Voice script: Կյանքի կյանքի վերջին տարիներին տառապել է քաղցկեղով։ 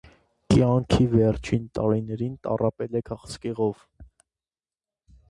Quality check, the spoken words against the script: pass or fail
fail